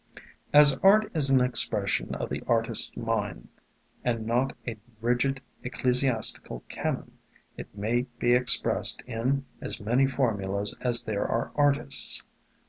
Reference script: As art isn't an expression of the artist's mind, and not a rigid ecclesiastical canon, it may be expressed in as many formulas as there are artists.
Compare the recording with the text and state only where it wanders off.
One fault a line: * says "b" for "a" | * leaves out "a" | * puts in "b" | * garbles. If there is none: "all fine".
* says "is" for "isn't"